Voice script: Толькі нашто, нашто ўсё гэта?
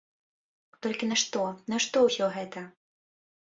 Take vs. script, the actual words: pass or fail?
pass